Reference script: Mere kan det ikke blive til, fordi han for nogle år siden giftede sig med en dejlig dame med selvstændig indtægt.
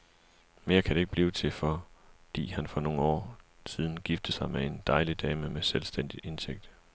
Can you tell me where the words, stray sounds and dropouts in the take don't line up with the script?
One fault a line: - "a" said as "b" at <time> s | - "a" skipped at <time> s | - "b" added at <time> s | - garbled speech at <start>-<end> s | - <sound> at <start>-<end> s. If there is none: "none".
none